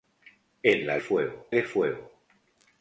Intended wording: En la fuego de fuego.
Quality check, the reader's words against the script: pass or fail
pass